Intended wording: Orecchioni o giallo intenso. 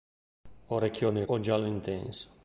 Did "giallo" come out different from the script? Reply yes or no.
no